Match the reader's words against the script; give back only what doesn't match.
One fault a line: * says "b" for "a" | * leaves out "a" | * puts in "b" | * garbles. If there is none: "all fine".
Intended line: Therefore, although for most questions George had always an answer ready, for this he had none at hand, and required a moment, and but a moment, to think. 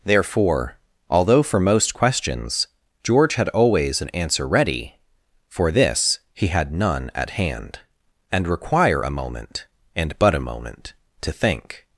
* says "require" for "required"